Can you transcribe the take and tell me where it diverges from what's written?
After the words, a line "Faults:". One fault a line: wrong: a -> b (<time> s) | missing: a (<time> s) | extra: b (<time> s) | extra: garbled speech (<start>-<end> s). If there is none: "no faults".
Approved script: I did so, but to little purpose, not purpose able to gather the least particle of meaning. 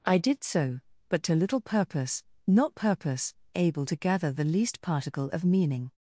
I did so, but to little purpose, not purpose able to gather the least particle of meaning.
Faults:
no faults